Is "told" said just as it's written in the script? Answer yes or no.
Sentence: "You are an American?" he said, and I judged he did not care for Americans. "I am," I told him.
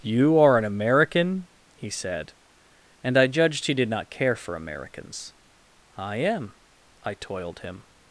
no